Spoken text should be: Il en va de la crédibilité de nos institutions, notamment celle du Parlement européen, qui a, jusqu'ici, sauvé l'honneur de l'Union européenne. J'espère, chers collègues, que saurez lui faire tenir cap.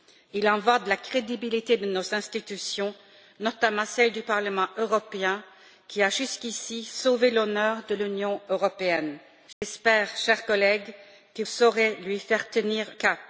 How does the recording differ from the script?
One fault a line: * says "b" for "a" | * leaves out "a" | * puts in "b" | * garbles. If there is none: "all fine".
all fine